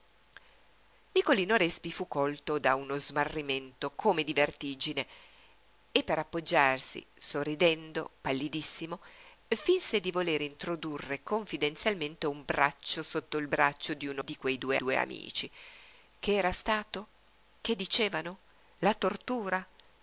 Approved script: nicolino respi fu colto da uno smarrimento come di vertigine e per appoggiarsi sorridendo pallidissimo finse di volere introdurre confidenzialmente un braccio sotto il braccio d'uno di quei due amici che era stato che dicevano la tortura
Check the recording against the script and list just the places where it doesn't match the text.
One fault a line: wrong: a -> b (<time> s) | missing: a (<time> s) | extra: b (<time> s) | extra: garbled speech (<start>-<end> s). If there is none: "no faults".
extra: due (14.7 s)